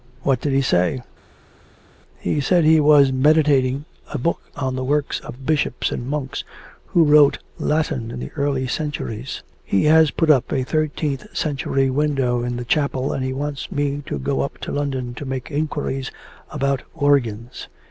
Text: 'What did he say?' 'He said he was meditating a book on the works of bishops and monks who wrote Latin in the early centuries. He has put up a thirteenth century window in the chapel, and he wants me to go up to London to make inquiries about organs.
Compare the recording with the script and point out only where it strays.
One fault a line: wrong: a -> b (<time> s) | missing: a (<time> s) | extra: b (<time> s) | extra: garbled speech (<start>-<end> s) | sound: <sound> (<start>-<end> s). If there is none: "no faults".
no faults